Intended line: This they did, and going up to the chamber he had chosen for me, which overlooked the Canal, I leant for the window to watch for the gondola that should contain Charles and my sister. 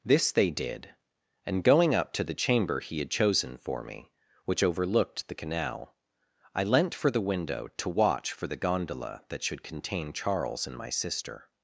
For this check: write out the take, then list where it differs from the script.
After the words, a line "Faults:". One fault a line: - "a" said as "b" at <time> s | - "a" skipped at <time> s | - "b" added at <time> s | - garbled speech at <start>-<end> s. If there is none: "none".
This they did, and going up to the chamber he had chosen for me, which overlooked the Canal, I leant for the window to watch for the gondola that should contain Charles and my sister.
Faults:
none